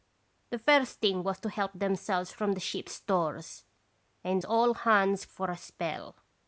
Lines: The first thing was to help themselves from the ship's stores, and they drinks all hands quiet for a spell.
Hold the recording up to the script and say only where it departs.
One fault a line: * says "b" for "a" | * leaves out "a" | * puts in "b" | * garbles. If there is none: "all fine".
* leaves out "they drinks"
* leaves out "quiet"